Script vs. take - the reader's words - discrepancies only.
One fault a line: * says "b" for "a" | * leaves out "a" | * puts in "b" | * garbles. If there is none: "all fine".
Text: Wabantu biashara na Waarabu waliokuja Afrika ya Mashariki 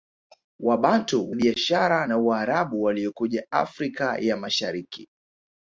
all fine